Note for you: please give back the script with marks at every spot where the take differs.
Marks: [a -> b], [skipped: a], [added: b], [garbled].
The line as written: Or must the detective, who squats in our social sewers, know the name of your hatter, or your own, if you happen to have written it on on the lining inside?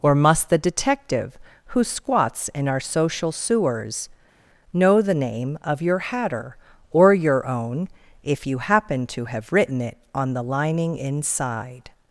Or must the detective, who squats in our social sewers, know the name of your hatter, or your own, if you happen to have written it on [skipped: on] the lining inside?